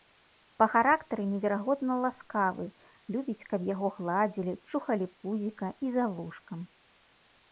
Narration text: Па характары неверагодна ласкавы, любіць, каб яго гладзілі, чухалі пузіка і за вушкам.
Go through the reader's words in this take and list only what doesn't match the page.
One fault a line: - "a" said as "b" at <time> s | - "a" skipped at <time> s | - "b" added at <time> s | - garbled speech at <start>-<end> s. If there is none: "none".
none